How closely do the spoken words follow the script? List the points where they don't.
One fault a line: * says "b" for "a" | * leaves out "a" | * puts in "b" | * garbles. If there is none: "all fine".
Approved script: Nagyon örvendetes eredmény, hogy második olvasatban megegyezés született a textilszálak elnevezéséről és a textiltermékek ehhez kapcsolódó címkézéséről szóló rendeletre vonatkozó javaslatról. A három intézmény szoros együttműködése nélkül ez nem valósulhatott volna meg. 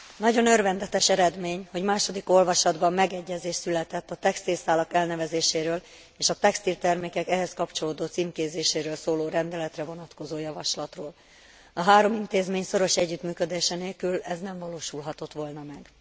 all fine